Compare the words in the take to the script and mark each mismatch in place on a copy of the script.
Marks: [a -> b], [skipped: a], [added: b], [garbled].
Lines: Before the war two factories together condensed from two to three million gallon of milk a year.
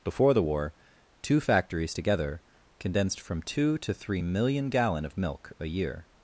Before the war two factories together condensed from two to three million gallon of milk a year.